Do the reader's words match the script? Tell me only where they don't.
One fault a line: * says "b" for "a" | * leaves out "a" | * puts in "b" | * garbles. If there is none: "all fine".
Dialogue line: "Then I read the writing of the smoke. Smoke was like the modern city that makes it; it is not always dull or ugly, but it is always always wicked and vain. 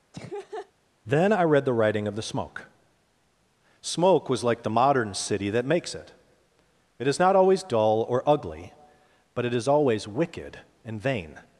* leaves out "always"